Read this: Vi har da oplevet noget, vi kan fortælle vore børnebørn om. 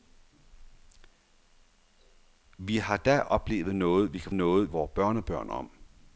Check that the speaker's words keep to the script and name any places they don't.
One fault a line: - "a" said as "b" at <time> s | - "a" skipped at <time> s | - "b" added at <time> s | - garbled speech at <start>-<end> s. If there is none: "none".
- "fortælle" said as "noget" at 4.3 s